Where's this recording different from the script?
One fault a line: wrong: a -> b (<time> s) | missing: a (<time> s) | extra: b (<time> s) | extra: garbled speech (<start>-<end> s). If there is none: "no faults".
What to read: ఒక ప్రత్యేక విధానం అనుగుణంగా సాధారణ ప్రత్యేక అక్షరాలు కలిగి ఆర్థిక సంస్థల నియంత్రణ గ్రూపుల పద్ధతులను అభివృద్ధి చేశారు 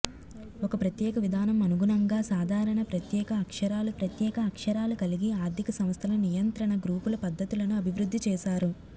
extra: ప్రత్యేక అక్షరాలు (4.0 s)